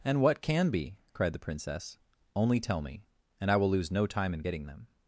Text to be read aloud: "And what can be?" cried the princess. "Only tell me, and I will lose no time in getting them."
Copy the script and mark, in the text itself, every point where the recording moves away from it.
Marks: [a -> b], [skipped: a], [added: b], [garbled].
"And what can be?" cried the princess. "Only tell me, and I will lose no time in getting them."